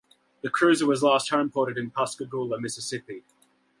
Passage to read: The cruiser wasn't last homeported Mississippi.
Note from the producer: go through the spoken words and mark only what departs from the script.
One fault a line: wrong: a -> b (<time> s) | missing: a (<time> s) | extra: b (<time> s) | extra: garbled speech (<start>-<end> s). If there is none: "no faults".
wrong: wasn't -> was (0.9 s)
extra: in Pascagoula (1.8 s)